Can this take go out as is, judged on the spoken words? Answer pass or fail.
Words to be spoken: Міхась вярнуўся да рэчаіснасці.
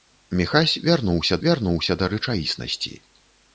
fail